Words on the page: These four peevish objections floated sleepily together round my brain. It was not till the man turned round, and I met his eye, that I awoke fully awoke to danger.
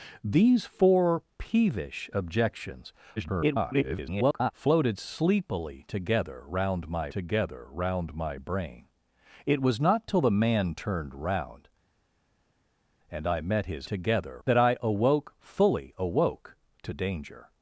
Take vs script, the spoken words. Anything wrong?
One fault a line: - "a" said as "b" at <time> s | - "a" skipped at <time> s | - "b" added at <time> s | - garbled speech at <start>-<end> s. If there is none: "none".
- garbled speech at 3.2-4.5 s
- "together round my" added at 7.1 s
- "eye" said as "together" at 13.9 s